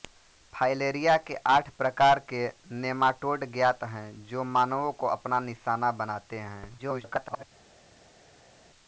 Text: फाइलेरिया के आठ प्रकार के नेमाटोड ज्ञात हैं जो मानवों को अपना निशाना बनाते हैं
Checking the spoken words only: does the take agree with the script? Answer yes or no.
no